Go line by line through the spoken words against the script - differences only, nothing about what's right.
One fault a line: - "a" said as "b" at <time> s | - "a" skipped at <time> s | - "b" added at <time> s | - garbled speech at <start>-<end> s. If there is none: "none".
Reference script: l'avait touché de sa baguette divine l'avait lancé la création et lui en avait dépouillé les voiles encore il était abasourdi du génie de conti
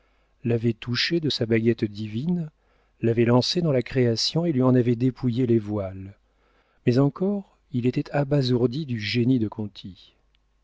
- "dans" added at 3.6 s
- "mais" added at 6.9 s